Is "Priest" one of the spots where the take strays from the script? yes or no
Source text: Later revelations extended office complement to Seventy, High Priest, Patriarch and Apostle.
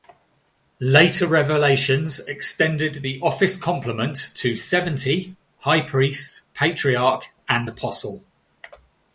no